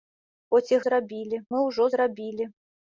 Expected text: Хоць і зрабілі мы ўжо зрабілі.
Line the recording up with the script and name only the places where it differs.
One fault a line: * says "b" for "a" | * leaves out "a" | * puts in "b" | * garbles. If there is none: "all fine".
all fine